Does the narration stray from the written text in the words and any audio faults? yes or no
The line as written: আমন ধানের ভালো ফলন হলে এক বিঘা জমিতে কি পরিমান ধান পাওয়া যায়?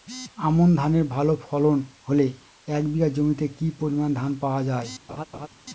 yes